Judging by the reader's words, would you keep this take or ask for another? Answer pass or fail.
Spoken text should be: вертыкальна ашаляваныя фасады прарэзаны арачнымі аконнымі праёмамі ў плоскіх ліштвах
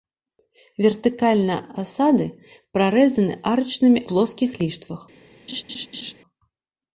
fail